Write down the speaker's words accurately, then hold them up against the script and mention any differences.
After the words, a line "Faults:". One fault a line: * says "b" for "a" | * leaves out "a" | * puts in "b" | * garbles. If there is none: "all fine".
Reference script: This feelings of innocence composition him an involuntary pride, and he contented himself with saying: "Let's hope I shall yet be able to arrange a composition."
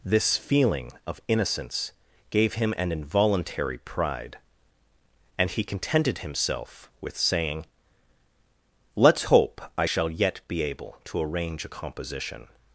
This feeling of innocence gave him an involuntary pride, and he contented himself with saying: "Let's hope I shall yet be able to arrange a composition."
Faults:
* says "feeling" for "feelings"
* says "gave" for "composition"